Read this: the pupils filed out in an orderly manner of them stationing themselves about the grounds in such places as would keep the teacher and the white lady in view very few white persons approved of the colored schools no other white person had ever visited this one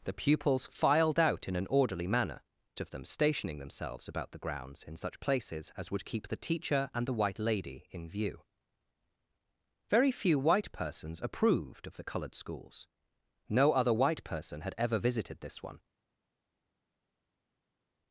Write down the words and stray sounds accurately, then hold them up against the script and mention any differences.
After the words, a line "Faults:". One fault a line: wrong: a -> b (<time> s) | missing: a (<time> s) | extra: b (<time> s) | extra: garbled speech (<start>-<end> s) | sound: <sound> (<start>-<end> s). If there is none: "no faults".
the pupils filed out in an orderly manner of them stationing themselves about the grounds in such places as would keep the teacher and the white lady in view very few white persons approved of the colored schools no other white person had ever visited this one
Faults:
no faults